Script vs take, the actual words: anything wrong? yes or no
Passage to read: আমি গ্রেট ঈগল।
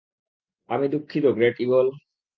yes